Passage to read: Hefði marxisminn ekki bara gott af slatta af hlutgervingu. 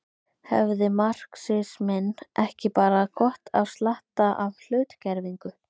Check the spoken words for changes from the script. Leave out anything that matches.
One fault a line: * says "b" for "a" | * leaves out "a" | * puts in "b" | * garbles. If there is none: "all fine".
all fine